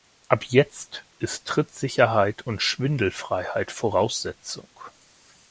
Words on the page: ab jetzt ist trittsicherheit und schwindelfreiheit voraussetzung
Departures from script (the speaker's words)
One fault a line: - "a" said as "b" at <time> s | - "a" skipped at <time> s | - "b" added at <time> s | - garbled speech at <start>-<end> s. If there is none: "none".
none